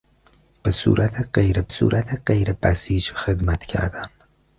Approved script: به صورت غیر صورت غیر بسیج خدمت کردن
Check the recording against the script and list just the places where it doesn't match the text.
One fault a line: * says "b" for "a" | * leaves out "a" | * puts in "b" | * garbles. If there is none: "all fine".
all fine